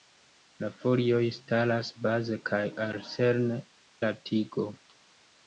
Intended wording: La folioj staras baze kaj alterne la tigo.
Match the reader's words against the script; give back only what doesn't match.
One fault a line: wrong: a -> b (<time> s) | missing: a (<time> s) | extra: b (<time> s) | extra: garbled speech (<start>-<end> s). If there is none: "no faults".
no faults